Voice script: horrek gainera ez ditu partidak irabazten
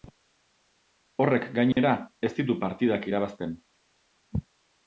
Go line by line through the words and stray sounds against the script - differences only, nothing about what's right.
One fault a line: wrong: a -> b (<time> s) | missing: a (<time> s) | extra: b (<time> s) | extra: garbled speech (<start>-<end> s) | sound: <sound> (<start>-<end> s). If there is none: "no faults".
sound: dropout (1.7-1.8 s)